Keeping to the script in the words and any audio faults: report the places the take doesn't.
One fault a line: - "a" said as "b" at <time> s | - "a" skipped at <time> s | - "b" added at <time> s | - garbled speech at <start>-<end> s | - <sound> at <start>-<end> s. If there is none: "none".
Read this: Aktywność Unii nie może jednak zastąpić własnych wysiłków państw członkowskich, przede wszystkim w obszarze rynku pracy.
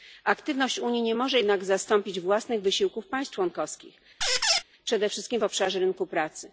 - squeak at 4.2-4.6 s